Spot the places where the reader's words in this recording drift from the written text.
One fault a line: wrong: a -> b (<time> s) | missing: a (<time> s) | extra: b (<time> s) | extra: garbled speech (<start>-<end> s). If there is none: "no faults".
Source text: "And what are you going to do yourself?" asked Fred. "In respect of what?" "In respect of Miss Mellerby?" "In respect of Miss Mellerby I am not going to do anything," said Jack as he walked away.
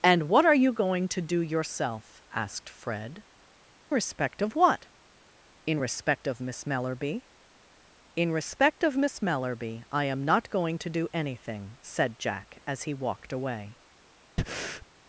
missing: In (3.2 s)